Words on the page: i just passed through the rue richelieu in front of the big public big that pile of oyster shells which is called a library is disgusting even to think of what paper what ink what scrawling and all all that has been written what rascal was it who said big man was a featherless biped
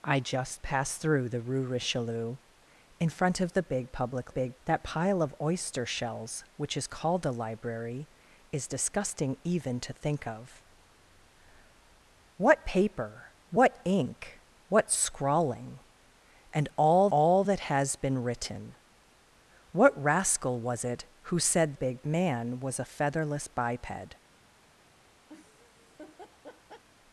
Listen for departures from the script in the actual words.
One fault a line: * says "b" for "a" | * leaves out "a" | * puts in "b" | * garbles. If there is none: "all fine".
all fine